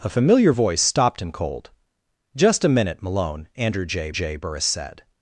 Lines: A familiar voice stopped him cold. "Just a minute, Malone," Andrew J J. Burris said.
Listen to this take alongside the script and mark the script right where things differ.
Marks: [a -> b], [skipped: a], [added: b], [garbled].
A familiar voice stopped him cold. "Just a minute, Malone," Andrew J J. Burris said.